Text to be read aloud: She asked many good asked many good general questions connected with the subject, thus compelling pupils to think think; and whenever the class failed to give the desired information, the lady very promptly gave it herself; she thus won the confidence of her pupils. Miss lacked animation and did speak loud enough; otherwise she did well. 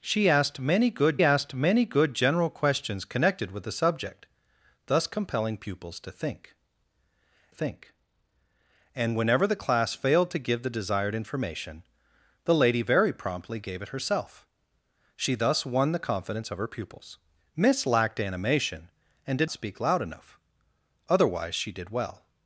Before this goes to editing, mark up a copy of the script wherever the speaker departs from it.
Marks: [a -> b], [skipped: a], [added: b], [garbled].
She asked many good asked many good general questions connected with the subject, thus compelling pupils to think think; and whenever the class failed to give the desired information, the lady very promptly gave it herself; she thus won the confidence of her pupils. Miss lacked animation and did speak loud enough; otherwise she did well.